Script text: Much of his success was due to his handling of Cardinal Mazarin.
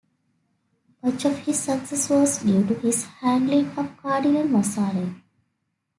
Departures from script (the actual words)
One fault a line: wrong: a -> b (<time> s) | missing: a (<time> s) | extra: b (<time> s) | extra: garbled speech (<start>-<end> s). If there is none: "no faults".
no faults